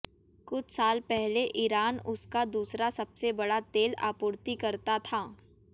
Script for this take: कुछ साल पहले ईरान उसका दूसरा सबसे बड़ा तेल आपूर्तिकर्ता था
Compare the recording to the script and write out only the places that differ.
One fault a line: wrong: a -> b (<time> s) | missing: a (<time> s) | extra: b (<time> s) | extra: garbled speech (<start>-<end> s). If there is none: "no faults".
no faults